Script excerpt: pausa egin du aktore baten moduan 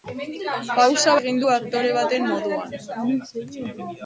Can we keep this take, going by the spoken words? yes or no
yes